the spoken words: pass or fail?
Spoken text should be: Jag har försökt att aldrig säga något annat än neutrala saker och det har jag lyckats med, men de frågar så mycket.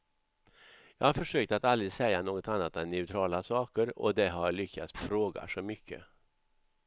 fail